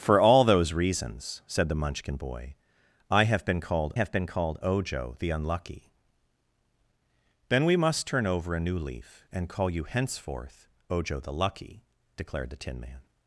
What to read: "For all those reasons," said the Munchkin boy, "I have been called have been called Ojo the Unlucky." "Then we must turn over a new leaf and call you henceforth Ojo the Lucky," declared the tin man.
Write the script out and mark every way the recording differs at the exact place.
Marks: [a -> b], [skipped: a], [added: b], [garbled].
"For all those reasons," said the Munchkin boy, "I have been called have been called Ojo the Unlucky." "Then we must turn over a new leaf and call you henceforth Ojo the Lucky," declared the tin man.